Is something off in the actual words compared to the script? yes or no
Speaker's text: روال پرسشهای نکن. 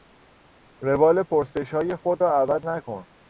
yes